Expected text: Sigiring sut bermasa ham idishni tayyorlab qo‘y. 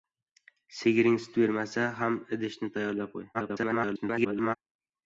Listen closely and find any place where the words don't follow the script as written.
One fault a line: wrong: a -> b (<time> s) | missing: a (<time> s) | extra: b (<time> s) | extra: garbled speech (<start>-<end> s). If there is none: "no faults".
extra: garbled speech (3.3-4.6 s)